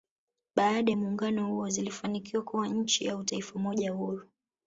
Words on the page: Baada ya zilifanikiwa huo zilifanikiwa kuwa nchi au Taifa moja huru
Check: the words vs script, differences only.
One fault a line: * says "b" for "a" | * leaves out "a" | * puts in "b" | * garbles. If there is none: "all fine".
* says "muungano" for "zilifanikiwa"